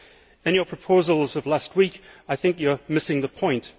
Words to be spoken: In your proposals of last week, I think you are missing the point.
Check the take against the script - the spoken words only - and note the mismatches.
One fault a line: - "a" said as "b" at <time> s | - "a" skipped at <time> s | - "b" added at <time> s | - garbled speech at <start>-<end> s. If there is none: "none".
none